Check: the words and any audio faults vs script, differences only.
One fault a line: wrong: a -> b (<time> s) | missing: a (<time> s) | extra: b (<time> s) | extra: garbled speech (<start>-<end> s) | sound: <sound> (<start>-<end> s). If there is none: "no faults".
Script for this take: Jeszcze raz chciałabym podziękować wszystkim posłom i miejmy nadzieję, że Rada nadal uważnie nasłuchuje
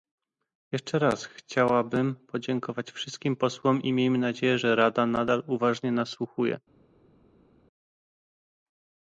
no faults